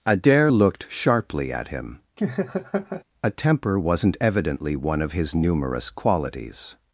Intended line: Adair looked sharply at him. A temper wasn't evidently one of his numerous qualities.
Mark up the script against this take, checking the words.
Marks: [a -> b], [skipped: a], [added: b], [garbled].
Adair looked sharply at him. A temper wasn't evidently one of his numerous qualities.